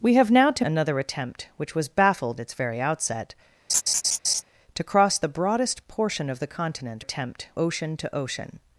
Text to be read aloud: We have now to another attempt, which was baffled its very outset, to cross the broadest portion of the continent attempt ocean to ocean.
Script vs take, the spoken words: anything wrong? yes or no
no